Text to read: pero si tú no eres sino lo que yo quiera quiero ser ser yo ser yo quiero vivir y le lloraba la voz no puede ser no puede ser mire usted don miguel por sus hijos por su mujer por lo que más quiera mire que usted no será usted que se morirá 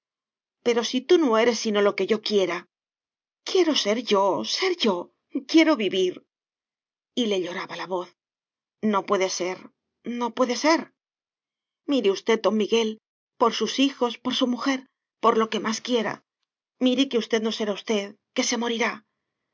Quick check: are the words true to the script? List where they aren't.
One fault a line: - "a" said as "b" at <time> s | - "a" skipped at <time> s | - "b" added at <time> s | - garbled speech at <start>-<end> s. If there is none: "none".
- "ser" skipped at 4.0 s